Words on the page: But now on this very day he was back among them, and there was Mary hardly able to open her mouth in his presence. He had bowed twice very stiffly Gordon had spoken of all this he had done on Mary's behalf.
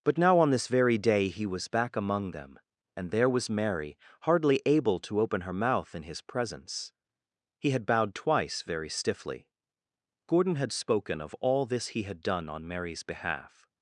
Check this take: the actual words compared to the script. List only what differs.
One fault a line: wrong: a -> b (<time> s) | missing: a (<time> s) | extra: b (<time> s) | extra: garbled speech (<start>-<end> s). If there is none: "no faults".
no faults